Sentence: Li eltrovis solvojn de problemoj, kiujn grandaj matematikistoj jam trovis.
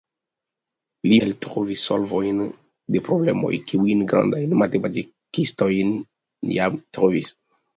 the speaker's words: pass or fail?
pass